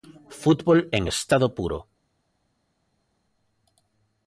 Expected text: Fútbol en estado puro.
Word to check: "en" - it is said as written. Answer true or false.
true